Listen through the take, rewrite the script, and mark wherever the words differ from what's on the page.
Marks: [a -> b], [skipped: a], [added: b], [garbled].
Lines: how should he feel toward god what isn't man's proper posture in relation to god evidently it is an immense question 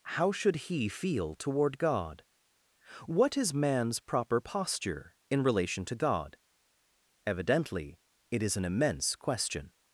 how should he feel toward god what [isn't -> is] man's proper posture in relation to god evidently it is an immense question